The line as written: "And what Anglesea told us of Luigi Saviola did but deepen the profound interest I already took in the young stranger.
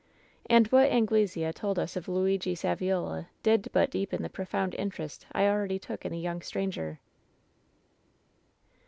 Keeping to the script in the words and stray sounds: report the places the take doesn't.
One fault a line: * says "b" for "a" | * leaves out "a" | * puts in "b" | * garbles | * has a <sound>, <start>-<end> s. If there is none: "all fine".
all fine